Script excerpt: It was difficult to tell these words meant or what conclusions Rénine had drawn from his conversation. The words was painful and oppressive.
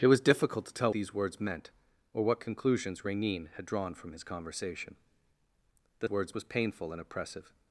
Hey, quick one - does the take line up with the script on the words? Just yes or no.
yes